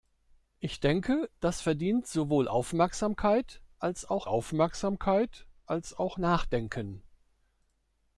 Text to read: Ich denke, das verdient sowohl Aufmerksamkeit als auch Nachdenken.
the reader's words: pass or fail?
fail